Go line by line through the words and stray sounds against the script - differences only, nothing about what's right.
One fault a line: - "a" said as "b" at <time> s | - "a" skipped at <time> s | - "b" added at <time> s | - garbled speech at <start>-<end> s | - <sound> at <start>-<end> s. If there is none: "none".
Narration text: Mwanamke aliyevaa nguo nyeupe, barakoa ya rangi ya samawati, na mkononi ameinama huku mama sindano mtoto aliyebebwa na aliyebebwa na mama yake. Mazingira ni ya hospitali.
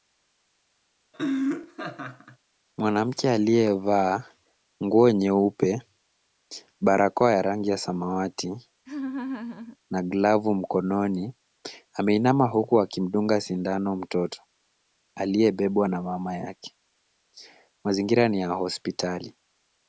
- laugh at 1.1-2.4 s
- laugh at 8.9-9.8 s
- "glavu" added at 10.0 s
- "mama" said as "akimdunga" at 12.8 s
- "aliyebebwa na" skipped at 16.0 s